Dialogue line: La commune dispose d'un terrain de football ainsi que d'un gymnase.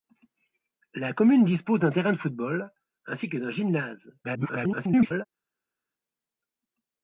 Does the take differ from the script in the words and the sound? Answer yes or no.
yes